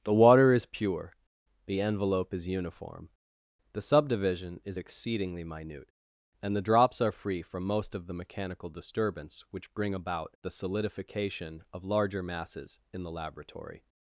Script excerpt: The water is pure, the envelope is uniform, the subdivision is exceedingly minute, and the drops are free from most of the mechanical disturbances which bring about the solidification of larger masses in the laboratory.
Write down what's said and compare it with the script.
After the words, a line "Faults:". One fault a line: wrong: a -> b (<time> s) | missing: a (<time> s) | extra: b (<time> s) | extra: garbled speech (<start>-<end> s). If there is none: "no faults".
The water is pure, the envelope is uniform, the subdivision is exceedingly minute, and the drops are free from most of the mechanical disturbance which bring about the solidification of larger masses in the laboratory.
Faults:
wrong: disturbances -> disturbance (8.7 s)